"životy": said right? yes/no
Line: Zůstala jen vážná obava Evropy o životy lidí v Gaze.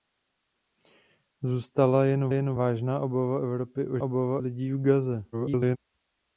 no